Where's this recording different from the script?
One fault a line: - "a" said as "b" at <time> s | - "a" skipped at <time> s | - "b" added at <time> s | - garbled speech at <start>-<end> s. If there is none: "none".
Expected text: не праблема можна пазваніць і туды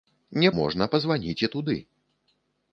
- "праблема" skipped at 0.5 s